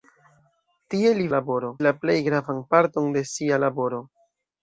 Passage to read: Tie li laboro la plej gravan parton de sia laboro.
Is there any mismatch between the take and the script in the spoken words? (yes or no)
no